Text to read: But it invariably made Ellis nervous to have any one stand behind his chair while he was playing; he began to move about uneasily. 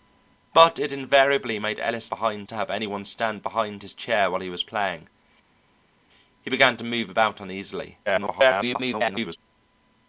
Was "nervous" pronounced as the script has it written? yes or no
no